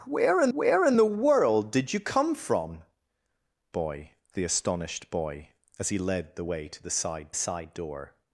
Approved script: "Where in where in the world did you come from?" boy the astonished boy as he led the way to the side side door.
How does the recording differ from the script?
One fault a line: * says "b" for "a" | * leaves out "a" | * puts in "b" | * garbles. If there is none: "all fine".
all fine